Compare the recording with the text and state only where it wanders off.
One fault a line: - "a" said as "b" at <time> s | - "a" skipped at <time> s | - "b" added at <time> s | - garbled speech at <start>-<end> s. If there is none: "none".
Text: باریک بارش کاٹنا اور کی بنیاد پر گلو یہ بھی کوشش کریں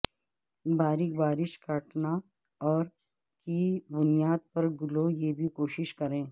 none